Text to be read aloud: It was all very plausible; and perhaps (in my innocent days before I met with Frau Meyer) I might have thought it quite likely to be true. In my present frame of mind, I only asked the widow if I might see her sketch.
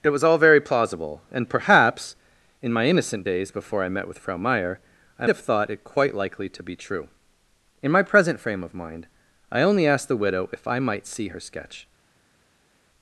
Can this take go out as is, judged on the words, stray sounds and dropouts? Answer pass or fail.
fail